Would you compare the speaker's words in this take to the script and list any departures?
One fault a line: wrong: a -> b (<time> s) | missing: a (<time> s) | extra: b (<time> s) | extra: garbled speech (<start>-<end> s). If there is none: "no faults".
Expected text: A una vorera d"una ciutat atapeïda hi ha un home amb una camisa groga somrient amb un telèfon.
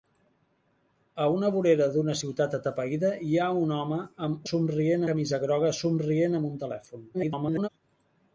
wrong: una -> somrient (4.5 s)
extra: garbled speech (7.1-7.7 s)